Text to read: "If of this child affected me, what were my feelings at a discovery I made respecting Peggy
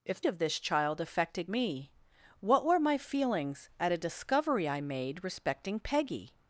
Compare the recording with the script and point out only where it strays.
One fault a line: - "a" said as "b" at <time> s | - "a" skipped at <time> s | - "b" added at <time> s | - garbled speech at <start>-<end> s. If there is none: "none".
none